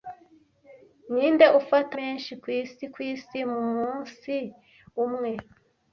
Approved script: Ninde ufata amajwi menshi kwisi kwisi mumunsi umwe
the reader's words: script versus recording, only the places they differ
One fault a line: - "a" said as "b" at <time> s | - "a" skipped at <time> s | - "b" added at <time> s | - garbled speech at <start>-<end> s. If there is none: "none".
- "amajwi" skipped at 1.9 s